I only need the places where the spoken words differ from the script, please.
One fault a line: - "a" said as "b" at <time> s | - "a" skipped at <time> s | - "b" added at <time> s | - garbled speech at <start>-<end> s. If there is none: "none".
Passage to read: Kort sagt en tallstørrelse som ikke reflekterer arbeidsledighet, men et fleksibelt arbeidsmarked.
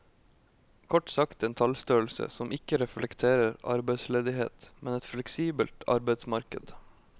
none